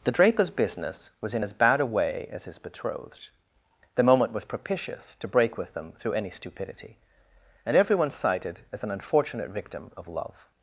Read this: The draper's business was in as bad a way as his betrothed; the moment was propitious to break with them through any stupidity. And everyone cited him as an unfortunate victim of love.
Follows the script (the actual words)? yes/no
no